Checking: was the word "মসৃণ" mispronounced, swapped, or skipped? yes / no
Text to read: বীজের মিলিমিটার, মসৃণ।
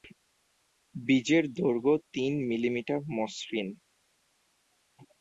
no